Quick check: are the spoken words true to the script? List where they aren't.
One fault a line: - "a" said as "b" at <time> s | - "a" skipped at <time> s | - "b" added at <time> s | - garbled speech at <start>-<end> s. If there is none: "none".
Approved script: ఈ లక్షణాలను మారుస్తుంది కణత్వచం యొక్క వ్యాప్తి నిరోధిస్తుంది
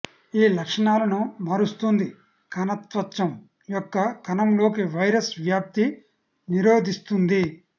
- "కణంలోకి వైరస్" added at 4.3 s